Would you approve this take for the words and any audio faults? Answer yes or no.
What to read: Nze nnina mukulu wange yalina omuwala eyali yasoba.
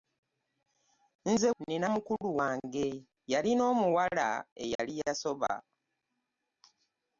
no